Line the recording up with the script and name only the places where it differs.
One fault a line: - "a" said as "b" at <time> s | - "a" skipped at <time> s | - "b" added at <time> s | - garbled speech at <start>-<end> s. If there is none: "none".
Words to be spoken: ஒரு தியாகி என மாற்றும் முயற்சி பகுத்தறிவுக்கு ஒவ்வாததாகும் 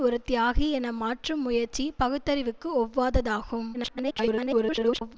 - garbled speech at 3.7-5.2 s